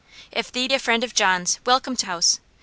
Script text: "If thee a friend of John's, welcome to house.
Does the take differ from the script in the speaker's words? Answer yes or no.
no